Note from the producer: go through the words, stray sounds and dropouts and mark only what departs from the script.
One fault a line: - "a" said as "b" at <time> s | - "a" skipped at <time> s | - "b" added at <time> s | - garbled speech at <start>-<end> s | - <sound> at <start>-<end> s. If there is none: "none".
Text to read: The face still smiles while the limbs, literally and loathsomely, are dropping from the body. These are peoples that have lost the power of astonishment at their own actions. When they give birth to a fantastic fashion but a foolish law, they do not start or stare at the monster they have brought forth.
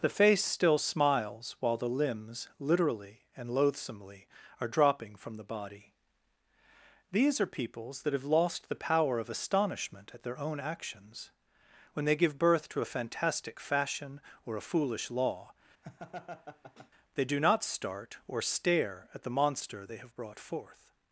- "but" said as "or" at 14.4 s
- laugh at 15.8-16.9 s